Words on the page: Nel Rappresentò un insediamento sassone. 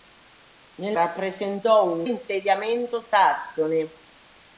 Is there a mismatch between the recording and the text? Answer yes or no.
no